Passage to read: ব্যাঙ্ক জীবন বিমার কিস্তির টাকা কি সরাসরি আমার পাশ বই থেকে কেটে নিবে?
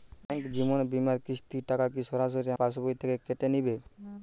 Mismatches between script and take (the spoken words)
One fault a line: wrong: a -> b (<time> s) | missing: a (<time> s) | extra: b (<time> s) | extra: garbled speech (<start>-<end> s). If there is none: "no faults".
missing: আমার (2.5 s)